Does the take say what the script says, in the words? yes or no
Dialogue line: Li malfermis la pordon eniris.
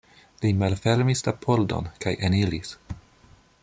no